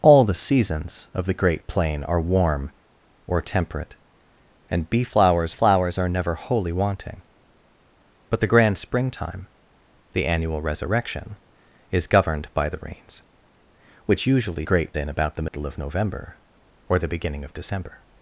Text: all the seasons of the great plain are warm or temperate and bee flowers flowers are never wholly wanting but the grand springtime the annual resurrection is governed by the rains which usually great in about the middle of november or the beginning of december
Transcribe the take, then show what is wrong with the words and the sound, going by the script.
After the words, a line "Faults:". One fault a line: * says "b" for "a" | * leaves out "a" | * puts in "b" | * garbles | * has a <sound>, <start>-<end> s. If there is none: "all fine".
all the seasons of the great plain are warm or temperate and bee flowers flowers are never wholly wanting but the grand springtime the annual resurrection is governed by the rains which usually great in about the middle of november or the beginning of december
Faults:
* has a dropout, 15.5-15.5 s